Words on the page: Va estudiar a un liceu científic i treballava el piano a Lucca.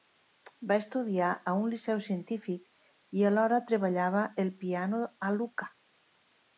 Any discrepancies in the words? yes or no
yes